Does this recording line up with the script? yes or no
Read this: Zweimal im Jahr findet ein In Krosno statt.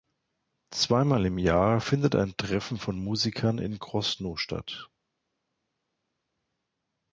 no